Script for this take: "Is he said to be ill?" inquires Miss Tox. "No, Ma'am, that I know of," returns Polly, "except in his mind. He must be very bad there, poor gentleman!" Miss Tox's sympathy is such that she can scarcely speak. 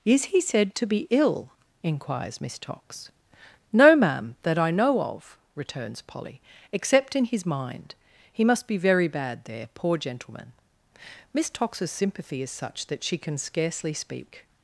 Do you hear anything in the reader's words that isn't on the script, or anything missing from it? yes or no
no